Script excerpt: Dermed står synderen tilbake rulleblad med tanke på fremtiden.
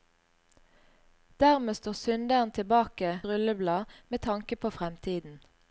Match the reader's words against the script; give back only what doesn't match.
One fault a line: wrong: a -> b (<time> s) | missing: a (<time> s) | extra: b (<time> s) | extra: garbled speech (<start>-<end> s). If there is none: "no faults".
no faults